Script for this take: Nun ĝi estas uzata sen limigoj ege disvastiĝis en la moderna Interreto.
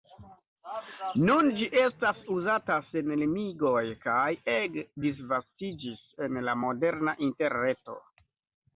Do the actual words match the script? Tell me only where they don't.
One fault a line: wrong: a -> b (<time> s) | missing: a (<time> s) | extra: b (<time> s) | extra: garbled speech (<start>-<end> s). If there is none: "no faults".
extra: kaj (4.1 s)